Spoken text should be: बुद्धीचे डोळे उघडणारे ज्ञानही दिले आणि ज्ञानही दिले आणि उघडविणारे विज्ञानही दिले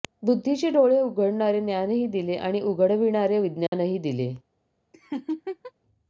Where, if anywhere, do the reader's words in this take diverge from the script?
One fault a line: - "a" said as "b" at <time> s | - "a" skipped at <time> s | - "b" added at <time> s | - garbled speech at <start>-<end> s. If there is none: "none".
- "ज्ञानही दिले आणि" skipped at 2.6 s